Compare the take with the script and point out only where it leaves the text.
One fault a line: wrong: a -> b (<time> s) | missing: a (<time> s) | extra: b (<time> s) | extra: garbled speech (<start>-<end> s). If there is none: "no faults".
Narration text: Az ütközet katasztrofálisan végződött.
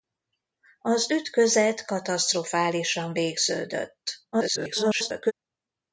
extra: garbled speech (4.3-5.3 s)